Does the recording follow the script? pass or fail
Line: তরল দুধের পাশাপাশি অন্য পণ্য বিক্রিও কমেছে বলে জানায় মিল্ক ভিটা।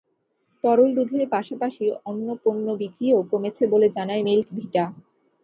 pass